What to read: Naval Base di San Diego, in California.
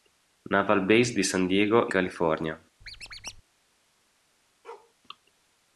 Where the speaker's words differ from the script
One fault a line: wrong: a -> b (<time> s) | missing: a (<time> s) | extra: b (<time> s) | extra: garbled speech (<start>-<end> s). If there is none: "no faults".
missing: in (1.9 s)